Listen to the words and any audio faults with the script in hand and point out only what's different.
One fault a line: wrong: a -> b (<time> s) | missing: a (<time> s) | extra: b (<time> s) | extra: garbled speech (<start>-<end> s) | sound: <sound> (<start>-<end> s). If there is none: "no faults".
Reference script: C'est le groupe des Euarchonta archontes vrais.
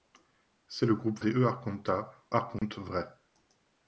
sound: dropout (2.6-2.6 s)